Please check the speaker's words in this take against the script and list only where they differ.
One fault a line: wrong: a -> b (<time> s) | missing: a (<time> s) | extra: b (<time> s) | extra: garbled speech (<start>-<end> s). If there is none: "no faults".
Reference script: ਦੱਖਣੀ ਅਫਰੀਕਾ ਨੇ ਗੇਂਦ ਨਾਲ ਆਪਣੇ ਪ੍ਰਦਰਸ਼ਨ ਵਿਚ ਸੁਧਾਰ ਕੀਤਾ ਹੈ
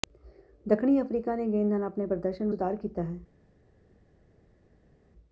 missing: ਵਿਚ (2.5 s)